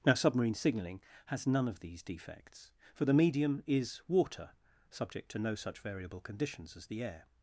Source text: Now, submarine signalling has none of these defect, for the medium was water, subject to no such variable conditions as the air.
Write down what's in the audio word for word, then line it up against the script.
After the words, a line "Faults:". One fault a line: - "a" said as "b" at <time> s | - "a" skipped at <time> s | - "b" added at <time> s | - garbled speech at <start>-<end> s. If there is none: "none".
Now, submarine signalling has none of these defects, for the medium is water, subject to no such variable conditions as the air.
Faults:
- "defect" said as "defects" at 2.0 s
- "was" said as "is" at 3.7 s